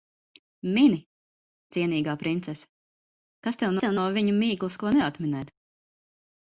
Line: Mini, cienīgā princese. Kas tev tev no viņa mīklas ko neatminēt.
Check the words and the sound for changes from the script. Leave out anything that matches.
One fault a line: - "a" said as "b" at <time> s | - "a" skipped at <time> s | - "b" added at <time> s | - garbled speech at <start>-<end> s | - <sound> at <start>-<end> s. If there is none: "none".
none